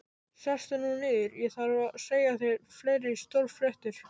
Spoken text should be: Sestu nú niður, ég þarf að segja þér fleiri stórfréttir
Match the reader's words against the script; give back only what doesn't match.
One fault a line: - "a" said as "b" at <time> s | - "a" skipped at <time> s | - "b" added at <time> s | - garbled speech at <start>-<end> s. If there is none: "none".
none